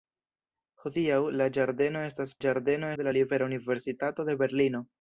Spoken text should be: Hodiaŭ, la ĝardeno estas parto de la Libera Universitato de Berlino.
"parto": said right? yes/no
no